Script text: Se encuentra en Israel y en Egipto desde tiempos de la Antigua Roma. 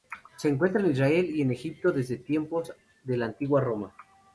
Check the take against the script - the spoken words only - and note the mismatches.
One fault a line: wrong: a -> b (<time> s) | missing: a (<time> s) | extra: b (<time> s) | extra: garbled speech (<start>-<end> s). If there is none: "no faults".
no faults